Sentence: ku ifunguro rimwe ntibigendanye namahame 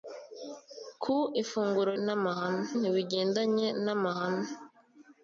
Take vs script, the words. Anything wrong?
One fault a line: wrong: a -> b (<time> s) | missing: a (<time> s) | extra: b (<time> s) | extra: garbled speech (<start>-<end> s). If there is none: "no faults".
wrong: rimwe -> namahame (2.0 s)